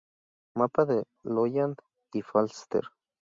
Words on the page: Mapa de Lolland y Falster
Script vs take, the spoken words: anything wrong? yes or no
no